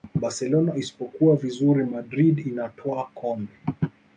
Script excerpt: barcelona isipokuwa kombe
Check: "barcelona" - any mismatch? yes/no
no